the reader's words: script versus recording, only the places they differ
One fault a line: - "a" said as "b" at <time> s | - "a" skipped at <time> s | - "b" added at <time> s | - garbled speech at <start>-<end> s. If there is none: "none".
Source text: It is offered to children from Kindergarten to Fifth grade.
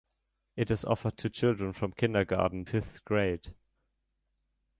- "to" skipped at 2.6 s